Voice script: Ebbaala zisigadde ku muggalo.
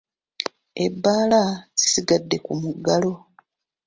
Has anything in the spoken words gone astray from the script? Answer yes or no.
no